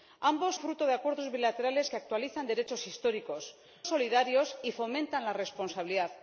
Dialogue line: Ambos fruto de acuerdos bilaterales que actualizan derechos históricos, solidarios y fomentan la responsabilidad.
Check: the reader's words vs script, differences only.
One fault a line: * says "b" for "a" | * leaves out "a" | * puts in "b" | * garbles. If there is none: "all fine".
all fine